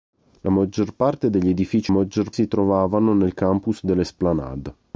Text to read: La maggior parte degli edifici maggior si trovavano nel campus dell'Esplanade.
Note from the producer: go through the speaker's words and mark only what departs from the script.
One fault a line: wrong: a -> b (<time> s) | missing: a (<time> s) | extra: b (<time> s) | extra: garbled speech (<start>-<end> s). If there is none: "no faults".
no faults